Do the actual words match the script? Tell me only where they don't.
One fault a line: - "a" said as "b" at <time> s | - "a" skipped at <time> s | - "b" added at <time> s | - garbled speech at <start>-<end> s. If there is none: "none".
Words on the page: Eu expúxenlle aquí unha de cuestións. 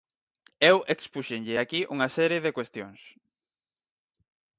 - "serie" added at 2.2 s